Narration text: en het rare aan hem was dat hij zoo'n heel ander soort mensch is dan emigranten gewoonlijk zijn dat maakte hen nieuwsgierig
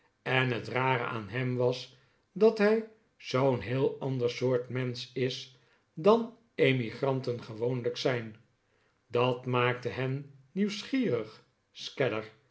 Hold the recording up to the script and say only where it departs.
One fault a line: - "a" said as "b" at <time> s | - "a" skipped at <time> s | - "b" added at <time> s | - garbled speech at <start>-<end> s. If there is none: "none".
none